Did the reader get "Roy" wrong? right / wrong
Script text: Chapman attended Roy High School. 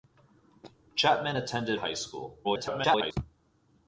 wrong